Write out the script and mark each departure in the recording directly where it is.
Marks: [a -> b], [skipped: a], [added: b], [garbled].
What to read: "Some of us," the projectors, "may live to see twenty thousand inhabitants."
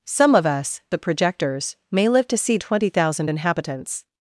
"Some of us," the projectors, "may live to see twenty thousand inhabitants."